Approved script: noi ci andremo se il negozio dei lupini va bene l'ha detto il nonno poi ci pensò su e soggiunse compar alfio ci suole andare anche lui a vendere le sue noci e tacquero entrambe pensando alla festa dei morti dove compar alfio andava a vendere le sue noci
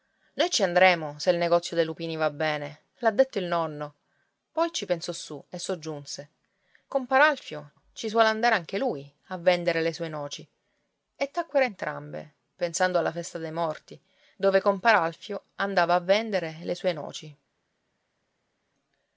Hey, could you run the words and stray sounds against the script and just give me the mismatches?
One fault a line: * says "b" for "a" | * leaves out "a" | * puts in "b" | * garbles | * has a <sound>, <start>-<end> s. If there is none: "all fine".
all fine